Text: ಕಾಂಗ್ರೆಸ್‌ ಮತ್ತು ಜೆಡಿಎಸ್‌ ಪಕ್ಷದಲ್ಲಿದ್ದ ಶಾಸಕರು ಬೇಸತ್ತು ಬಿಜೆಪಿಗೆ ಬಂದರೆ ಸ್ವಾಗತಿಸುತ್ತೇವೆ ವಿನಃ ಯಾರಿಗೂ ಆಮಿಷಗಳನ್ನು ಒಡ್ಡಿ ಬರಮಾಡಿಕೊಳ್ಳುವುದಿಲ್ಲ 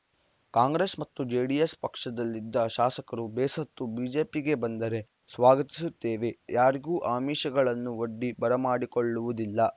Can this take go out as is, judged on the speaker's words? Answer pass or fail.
fail